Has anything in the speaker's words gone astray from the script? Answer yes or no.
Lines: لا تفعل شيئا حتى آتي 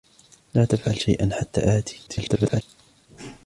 yes